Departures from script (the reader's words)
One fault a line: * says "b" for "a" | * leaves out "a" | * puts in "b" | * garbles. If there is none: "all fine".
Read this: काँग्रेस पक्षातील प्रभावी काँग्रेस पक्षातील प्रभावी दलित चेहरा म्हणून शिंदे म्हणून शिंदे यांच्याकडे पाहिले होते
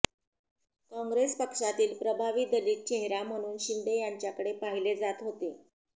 * leaves out "काँग्रेस पक्षातील प्रभावी"
* leaves out "म्हणून शिंदे"
* puts in "जात"